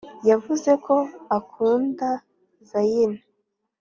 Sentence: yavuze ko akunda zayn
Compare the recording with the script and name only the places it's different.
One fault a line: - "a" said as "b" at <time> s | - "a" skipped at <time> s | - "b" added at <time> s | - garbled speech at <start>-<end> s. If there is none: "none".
none